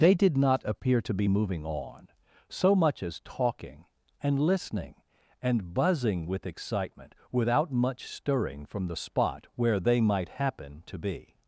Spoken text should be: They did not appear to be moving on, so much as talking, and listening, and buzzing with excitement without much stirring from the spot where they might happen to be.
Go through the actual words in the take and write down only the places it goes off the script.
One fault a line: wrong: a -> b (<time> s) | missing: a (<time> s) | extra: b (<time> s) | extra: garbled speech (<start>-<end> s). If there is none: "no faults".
no faults